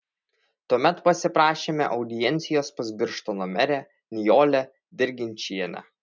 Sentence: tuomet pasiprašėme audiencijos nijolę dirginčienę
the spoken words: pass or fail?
fail